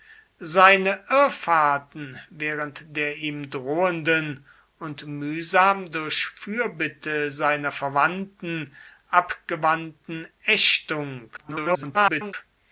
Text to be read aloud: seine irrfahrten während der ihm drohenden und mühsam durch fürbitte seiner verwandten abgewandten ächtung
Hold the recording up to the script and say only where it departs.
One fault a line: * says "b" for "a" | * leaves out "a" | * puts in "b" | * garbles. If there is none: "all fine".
* garbles